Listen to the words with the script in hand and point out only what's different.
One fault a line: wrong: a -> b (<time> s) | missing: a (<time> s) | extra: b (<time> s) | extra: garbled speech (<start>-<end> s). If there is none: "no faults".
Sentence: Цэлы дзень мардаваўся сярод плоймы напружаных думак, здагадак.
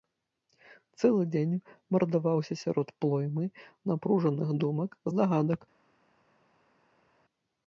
no faults